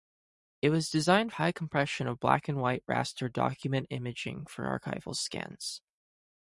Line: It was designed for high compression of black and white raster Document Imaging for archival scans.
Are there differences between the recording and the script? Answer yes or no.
yes